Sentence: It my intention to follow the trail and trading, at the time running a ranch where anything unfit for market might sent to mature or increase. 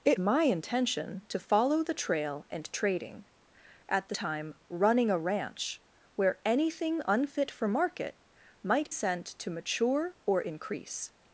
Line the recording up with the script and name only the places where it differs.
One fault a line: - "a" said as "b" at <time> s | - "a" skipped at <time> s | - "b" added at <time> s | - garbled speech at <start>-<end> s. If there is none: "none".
none